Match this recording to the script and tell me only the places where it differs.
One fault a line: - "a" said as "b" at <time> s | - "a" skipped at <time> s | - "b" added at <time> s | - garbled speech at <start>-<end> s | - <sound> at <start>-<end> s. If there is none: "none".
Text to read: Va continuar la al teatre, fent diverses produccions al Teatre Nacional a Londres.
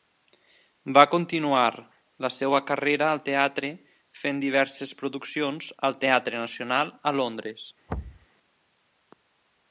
- "seva carrera" added at 2.4 s
- thud at 7.9-8.3 s